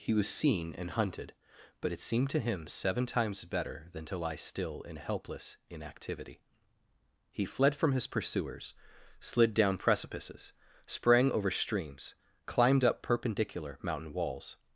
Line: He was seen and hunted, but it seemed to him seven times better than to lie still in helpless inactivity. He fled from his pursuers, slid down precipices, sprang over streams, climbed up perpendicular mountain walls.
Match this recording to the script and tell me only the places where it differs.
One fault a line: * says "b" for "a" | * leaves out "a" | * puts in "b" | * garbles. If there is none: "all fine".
all fine